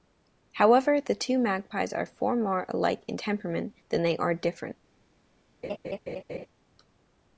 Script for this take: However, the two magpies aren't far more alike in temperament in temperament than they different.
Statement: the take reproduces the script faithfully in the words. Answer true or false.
false